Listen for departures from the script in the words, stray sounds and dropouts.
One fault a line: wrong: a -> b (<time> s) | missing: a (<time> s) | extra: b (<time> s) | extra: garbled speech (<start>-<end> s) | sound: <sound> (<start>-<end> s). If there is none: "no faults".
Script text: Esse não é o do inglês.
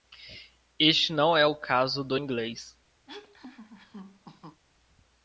wrong: Esse -> Este (0.8 s)
extra: caso (1.6 s)
sound: laugh (3.1-4.6 s)